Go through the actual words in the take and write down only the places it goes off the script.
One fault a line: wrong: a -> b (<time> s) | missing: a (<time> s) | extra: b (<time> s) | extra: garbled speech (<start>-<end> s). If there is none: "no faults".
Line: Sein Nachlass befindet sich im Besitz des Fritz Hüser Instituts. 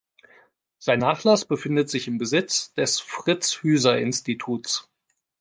no faults